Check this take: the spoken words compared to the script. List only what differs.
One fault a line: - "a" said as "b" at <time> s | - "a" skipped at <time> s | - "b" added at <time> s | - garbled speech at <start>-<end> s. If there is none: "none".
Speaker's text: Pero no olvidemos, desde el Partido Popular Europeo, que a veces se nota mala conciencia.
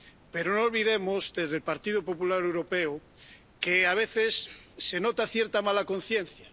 - "cierta" added at 5.3 s